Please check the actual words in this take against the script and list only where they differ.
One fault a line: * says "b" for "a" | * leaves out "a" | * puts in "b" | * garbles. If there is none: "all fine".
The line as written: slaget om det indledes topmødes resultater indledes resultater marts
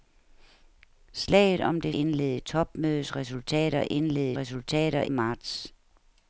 all fine